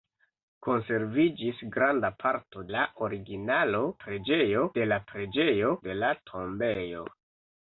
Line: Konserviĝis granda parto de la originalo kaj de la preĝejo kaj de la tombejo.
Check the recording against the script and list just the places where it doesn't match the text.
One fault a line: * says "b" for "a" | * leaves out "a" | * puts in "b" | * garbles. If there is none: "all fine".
* leaves out "de"
* says "preĝejo" for "kaj"
* leaves out "kaj"